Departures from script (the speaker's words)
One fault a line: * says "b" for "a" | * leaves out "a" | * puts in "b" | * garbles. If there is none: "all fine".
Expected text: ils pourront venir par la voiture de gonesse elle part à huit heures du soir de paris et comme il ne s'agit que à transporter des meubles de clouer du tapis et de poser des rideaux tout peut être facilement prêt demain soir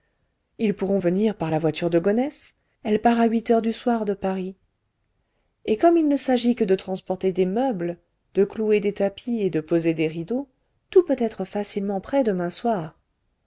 * says "de" for "à"
* says "des" for "du"